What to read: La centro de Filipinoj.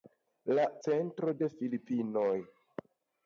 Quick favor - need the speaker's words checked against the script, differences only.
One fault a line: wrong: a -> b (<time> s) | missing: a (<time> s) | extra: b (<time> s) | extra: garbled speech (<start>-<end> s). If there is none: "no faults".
no faults